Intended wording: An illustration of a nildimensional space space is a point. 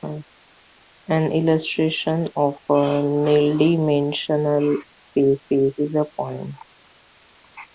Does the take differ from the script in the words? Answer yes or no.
no